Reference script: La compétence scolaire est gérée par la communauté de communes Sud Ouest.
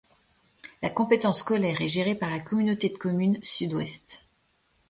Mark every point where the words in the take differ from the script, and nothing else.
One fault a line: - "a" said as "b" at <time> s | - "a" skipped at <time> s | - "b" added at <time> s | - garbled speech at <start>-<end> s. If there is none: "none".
none